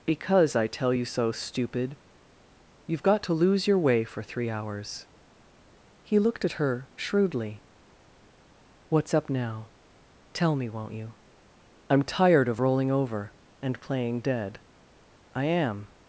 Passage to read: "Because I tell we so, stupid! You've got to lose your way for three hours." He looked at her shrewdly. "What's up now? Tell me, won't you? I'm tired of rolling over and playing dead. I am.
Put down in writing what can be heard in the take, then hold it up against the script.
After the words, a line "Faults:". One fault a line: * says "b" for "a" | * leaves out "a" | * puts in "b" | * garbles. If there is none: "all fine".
"Because I tell you so, stupid! You've got to lose your way for three hours." He looked at her shrewdly. "What's up now? Tell me, won't you? I'm tired of rolling over and playing dead. I am.
Faults:
* says "you" for "we"